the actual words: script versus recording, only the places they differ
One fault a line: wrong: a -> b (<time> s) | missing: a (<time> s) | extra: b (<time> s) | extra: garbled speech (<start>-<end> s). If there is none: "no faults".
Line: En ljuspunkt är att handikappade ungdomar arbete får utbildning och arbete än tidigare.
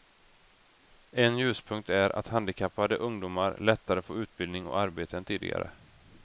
wrong: arbete -> lättare (3.6 s)